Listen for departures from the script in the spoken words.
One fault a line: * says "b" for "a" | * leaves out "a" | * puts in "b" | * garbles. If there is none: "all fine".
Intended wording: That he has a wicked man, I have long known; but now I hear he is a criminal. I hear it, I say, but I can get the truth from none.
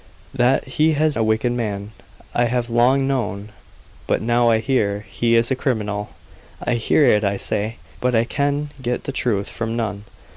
all fine